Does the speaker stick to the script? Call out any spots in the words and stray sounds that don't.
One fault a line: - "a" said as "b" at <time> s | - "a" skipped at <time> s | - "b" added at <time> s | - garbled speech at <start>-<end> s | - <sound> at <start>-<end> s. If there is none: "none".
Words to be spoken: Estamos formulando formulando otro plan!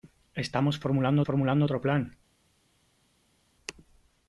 none